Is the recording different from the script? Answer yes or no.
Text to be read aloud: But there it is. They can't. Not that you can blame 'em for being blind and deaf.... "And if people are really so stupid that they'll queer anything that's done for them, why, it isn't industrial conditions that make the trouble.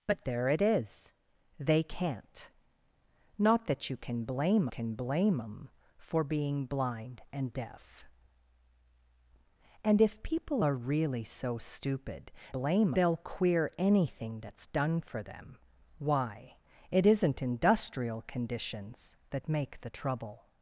yes